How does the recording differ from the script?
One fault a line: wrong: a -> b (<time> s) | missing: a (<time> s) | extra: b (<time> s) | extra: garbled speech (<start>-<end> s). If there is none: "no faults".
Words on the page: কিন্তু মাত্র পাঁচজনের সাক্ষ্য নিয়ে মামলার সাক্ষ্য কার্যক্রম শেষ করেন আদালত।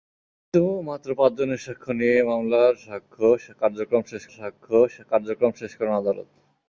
extra: সাক্ষ্য কার্যক্রম শেষ (4.4 s)